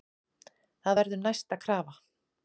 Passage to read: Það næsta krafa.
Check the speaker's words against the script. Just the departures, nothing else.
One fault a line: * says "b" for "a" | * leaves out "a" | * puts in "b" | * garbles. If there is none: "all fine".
* puts in "verður"